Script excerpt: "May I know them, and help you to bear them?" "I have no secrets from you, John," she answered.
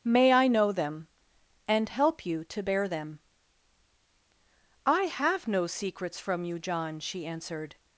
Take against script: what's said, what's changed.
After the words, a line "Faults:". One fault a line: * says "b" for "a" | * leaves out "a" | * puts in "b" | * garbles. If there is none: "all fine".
"May I know them, and help you to bear them?" "I have no secrets from you, John," she answered.
Faults:
all fine